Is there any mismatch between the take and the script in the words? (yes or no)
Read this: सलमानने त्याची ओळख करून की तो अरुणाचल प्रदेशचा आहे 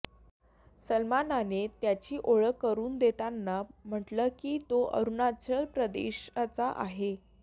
yes